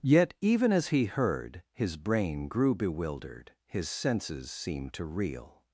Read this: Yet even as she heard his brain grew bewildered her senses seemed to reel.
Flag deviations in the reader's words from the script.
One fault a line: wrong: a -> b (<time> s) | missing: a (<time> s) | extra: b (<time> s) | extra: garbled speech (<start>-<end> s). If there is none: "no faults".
wrong: she -> he (0.9 s)
wrong: her -> his (3.7 s)